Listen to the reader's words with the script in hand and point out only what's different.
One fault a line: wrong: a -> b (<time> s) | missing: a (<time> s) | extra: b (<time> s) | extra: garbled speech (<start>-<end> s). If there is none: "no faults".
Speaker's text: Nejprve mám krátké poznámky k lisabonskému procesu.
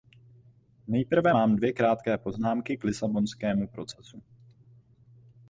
extra: dvě (1.5 s)